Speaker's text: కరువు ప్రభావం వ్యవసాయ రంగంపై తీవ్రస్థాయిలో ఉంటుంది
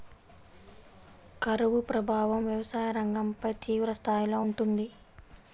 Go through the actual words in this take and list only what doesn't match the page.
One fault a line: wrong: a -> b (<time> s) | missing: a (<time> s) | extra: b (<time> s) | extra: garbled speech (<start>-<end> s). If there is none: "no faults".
no faults